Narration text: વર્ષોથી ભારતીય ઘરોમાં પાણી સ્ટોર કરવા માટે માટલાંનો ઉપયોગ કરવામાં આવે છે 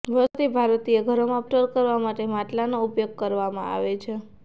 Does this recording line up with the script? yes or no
no